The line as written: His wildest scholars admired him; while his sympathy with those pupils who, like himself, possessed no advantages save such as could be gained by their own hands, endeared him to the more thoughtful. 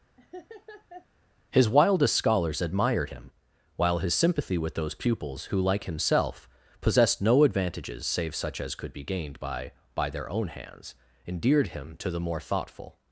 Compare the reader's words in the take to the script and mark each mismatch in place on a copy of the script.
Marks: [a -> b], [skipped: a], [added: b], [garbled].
His wildest scholars admired him; while his sympathy with those pupils who, like himself, possessed no advantages save such as could be gained by [added: by] their own hands, endeared him to the more thoughtful.